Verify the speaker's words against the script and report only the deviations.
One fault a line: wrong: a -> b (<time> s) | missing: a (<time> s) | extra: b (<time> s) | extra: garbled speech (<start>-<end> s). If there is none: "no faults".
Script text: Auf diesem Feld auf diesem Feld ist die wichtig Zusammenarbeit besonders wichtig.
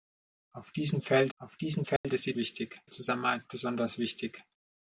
no faults